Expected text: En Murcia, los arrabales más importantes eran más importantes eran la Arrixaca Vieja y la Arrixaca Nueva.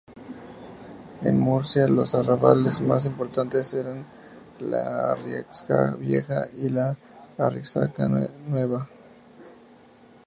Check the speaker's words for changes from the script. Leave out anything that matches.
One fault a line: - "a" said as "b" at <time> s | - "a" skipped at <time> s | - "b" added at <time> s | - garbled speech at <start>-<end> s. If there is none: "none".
- "más importantes eran" skipped at 4.0 s